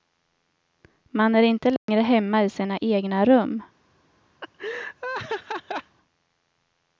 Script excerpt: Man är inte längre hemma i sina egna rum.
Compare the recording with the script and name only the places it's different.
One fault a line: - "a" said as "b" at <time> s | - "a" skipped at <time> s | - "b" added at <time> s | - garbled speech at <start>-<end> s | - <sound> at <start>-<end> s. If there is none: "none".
- dropout at 1.8-1.9 s
- laugh at 4.4-6.0 s